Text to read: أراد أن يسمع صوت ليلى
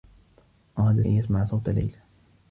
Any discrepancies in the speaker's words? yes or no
no